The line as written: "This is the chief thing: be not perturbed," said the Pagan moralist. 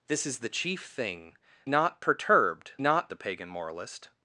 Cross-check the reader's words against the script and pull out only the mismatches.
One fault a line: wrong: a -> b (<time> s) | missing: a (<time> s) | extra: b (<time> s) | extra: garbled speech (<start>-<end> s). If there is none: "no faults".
missing: be (1.4 s)
wrong: said -> not (2.8 s)